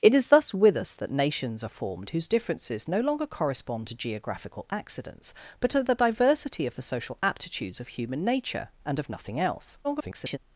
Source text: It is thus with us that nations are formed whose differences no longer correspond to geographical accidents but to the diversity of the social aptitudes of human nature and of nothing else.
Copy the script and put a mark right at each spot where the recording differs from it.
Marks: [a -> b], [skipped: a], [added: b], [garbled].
It is thus with us that nations are formed whose differences no longer correspond to geographical accidents but to the diversity of the social aptitudes of human nature and of nothing else. [garbled]